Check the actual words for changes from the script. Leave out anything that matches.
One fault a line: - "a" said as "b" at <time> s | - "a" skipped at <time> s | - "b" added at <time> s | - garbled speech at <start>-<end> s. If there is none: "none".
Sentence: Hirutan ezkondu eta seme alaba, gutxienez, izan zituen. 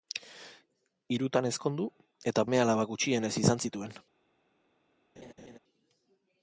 none